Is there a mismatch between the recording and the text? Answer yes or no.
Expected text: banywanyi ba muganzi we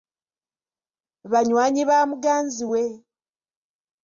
no